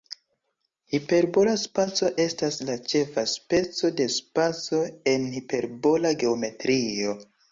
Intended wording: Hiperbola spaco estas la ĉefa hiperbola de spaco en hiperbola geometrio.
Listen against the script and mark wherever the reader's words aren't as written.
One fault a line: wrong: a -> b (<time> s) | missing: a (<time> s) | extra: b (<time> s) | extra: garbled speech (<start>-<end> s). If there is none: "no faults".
wrong: hiperbola -> speco (3.3 s)